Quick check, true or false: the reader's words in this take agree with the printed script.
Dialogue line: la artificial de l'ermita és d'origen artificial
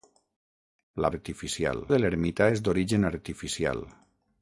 true